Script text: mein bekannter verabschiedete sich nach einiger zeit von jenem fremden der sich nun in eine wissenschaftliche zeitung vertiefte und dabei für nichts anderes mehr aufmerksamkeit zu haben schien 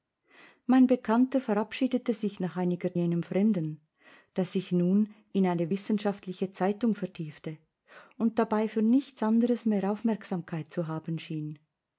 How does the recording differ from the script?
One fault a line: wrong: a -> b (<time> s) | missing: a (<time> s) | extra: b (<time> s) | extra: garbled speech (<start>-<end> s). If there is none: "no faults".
missing: zeit von (3.0 s)